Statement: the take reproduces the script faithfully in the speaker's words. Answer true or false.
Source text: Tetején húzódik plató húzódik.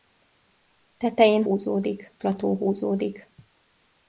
true